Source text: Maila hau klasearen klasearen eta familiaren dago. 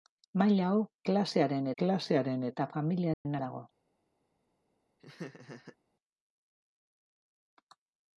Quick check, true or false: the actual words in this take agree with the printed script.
true